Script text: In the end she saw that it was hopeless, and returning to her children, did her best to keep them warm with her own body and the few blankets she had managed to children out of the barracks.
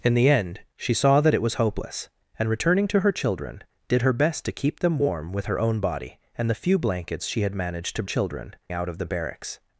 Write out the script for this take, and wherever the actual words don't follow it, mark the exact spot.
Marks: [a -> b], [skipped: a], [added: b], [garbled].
In the end she saw that it was hopeless, and returning to her children, did her best to keep them warm with her own body and the few blankets she had managed to children out of the barracks.